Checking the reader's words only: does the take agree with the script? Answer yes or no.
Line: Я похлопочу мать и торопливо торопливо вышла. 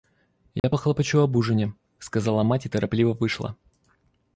no